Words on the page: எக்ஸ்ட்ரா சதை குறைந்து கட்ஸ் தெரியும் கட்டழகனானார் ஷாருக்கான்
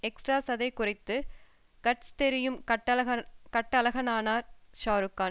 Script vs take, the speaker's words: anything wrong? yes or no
no